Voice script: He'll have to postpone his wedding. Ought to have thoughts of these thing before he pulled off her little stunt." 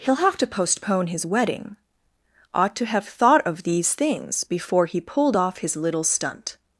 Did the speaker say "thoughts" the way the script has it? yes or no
no